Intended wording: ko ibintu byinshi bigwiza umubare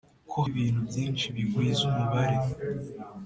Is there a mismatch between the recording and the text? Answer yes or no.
no